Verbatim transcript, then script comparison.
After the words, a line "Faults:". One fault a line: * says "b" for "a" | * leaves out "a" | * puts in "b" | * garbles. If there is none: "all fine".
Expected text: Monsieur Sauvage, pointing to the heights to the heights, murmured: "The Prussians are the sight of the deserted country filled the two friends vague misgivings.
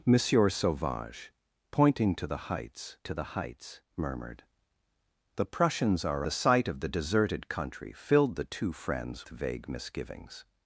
Monsieur Sauvage, pointing to the heights to the heights, murmured: "The Prussians are the sight of the deserted country filled the two friends vague misgivings.
Faults:
all fine